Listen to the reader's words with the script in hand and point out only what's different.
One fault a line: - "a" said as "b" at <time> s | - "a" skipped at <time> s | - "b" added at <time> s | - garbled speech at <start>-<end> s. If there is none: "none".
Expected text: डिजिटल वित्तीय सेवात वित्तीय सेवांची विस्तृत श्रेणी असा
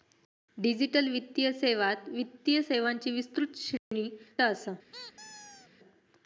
none